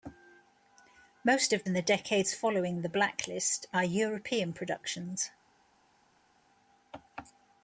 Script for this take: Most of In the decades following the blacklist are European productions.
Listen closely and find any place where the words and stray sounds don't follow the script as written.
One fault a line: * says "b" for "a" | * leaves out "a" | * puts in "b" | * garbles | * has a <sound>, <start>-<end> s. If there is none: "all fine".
all fine